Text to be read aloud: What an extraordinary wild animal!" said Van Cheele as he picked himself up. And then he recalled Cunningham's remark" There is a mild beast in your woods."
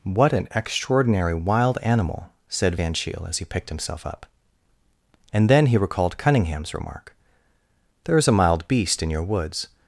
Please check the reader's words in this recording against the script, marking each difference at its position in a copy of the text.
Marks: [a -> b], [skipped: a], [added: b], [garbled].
What an extraordinary wild animal!" said Van Cheele as he picked himself up. And then he recalled Cunningham's remark" There is a mild beast in your woods."